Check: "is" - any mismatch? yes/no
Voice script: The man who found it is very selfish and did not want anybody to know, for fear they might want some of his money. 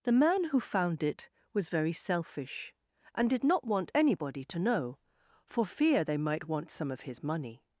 yes